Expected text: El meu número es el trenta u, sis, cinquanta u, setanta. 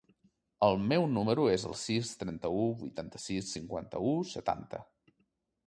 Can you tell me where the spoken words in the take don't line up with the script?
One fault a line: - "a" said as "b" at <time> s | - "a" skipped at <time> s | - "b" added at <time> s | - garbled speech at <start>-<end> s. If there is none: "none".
- "sis" added at 1.8 s
- "vuitanta" added at 2.8 s